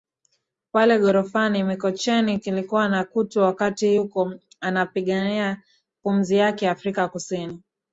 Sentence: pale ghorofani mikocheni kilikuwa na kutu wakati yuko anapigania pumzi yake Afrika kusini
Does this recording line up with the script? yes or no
yes